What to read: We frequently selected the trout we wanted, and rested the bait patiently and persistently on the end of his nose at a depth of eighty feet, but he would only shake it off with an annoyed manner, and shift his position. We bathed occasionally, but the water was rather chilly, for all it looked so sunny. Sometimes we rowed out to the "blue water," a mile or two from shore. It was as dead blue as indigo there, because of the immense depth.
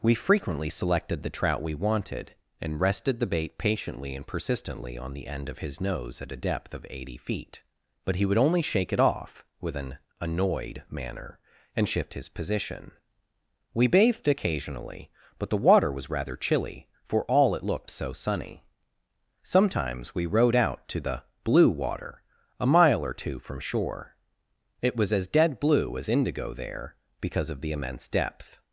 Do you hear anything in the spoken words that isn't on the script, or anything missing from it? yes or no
no